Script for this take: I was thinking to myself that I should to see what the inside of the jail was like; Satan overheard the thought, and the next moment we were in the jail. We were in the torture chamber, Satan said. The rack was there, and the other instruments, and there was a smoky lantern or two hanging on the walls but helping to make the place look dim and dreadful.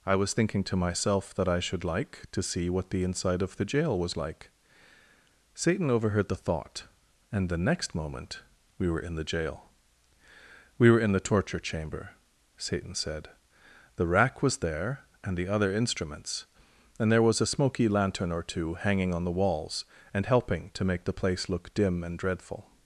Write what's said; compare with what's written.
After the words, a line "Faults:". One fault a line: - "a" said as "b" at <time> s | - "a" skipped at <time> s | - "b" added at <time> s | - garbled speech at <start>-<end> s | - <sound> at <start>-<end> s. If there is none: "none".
I was thinking to myself that I should like to see what the inside of the jail was like; Satan overheard the thought, and the next moment we were in the jail. We were in the torture chamber, Satan said. The rack was there, and the other instruments, and there was a smoky lantern or two hanging on the walls and helping to make the place look dim and dreadful.
Faults:
- "like" added at 1.8 s
- "but" said as "and" at 20.1 s